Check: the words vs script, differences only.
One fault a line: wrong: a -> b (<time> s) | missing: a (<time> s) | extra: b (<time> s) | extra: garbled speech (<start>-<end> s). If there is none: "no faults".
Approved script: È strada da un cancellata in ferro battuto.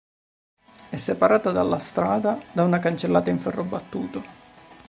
extra: separata dalla (0.9 s)
wrong: un -> una (2.6 s)